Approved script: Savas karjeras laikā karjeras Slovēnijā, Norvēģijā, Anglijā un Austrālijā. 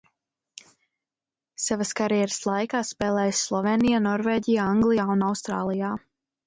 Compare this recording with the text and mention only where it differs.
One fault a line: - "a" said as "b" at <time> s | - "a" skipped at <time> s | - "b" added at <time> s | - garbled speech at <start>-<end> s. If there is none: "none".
- "karjeras" said as "spēlējis" at 2.9 s